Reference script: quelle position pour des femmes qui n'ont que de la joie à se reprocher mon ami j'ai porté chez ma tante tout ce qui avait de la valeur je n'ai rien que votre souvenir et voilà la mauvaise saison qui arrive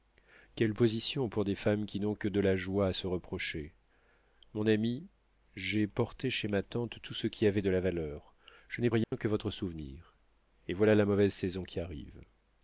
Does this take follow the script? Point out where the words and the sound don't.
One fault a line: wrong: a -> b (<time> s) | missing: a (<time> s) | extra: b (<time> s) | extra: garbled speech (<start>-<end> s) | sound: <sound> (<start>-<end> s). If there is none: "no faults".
sound: dropout (9.0-9.1 s)